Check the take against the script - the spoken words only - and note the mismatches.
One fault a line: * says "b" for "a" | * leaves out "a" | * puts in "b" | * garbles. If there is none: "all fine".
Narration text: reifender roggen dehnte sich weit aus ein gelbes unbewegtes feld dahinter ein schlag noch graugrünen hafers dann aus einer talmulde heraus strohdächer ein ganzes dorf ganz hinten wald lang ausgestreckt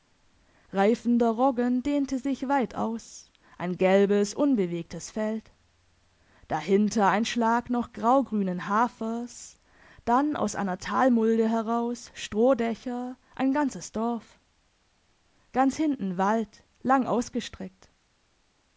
all fine